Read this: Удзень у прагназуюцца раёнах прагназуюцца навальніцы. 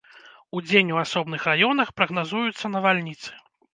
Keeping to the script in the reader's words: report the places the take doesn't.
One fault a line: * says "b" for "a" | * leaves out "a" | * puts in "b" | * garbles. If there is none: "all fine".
* says "асобных" for "прагназуюцца"